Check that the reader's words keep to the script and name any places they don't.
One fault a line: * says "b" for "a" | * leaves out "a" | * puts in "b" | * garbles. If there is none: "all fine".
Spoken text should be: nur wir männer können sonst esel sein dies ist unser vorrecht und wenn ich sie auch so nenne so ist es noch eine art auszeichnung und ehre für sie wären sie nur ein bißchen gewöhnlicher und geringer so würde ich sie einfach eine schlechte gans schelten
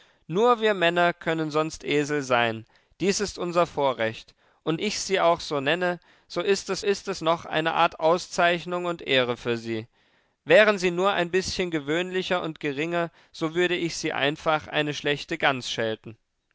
* leaves out "wenn"
* puts in "ist es"